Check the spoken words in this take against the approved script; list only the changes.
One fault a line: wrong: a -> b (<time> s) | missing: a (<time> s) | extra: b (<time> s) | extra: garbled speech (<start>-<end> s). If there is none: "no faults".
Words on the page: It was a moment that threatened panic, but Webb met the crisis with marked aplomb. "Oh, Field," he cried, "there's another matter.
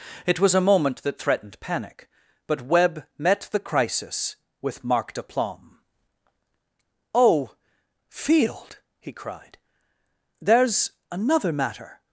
no faults